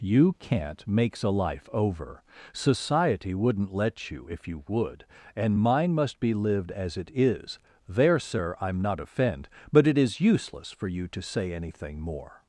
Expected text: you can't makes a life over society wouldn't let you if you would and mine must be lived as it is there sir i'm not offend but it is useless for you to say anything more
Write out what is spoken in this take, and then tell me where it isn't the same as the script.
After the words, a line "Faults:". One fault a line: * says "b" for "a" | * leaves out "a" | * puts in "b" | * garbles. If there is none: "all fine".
you can't makes a life over society wouldn't let you if you would and mine must be lived as it is there sir i'm not offend but it is useless for you to say anything more
Faults:
all fine